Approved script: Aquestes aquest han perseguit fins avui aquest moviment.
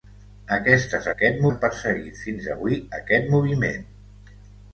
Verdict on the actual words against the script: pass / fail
pass